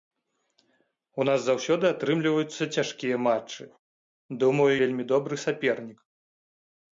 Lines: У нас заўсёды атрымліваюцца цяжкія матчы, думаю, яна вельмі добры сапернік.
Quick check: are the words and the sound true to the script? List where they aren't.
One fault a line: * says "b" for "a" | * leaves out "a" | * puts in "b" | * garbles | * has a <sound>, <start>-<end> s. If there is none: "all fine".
* leaves out "яна"